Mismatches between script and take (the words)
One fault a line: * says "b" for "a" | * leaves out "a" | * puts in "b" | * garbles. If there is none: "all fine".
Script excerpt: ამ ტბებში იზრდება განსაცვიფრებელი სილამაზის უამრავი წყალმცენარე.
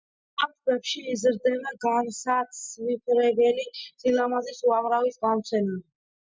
all fine